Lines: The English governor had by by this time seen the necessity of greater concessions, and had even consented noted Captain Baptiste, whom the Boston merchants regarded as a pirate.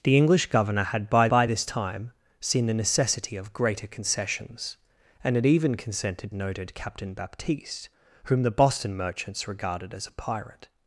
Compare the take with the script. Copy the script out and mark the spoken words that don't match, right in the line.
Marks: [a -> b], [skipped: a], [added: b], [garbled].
The English governor had by by this time seen the necessity of greater concessions, and had even consented noted Captain Baptiste, whom the Boston merchants regarded as a pirate.